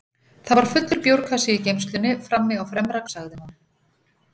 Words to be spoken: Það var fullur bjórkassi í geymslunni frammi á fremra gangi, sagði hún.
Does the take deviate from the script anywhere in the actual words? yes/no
yes